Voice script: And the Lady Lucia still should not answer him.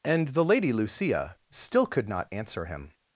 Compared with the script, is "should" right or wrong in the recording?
wrong